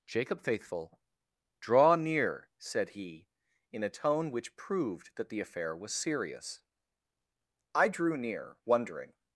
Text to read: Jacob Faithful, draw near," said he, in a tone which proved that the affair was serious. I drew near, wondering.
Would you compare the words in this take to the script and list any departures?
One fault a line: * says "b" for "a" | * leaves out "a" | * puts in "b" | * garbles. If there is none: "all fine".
all fine